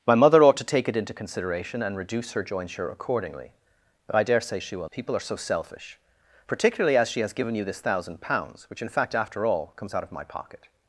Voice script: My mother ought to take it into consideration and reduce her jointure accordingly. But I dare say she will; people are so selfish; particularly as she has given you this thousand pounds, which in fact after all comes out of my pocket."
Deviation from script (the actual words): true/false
false